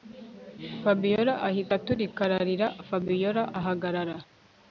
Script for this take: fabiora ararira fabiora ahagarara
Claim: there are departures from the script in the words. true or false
true